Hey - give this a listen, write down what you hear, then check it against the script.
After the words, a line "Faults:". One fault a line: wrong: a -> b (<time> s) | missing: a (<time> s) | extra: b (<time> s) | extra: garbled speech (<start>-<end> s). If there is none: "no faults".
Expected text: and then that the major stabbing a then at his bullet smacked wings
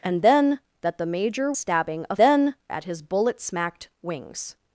and then that the major stabbing a then at his bullet smacked wings
Faults:
no faults